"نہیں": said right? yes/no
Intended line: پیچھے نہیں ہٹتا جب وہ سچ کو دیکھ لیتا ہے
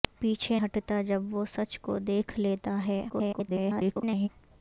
no